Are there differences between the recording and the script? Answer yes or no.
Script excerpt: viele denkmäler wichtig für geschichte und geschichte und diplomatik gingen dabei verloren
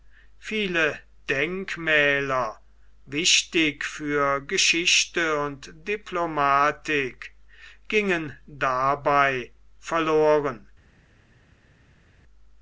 yes